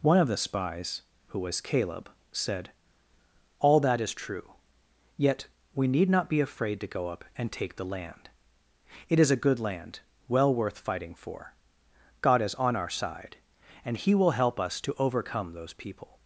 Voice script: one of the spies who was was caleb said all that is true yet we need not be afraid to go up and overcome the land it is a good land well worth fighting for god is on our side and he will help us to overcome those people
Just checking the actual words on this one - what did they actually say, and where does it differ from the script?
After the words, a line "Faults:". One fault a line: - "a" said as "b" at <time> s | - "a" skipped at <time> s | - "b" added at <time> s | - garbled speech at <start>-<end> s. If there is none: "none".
one of the spies who was caleb said all that is true yet we need not be afraid to go up and take the land it is a good land well worth fighting for god is on our side and he will help us to overcome those people
Faults:
- "was" skipped at 1.6 s
- "overcome" said as "take" at 7.5 s